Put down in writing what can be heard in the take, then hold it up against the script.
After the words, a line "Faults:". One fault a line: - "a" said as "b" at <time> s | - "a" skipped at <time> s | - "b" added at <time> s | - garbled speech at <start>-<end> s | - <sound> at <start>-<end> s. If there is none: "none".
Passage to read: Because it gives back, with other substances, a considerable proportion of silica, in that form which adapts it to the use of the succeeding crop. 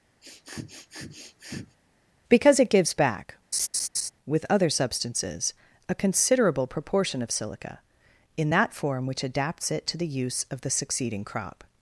Because it gives back, with other substances, a considerable proportion of silica, in that form which adapts it to the use of the succeeding crop.
Faults:
- sniff at 0.2-1.8 s
- laugh at 3.5-4.1 s